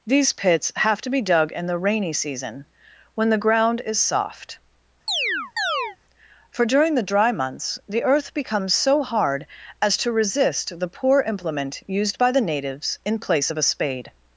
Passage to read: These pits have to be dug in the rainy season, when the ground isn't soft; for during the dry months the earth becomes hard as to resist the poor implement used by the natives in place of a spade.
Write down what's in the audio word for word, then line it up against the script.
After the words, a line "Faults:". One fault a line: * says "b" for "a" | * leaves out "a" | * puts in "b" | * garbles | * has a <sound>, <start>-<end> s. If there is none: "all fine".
These pits have to be dug in the rainy season, when the ground is soft; for during the dry months the earth becomes so hard as to resist the poor implement used by the natives in place of a spade.
Faults:
* says "is" for "isn't"
* has a chirp, 5.1-6.0 s
* puts in "so"